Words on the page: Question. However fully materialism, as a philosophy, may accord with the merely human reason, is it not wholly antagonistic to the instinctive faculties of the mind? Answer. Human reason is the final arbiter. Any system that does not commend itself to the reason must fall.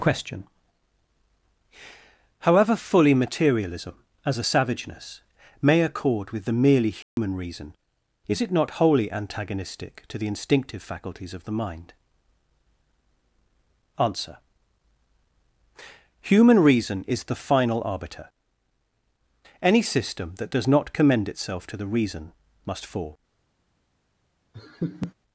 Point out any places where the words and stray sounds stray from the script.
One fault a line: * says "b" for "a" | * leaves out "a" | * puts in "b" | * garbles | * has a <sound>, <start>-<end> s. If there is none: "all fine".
* says "savageness" for "philosophy"
* has a dropout, 7.0-7.2 s
* has a laugh, 24.5-25.1 s